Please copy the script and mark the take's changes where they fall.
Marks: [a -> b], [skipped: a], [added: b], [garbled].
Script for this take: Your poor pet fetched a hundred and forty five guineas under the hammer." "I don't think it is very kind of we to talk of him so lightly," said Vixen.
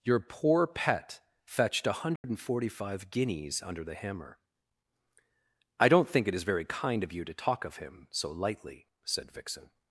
Your poor pet fetched a hundred and forty five guineas under the hammer." "I don't think it is very kind of [we -> you] to talk of him so lightly," said Vixen.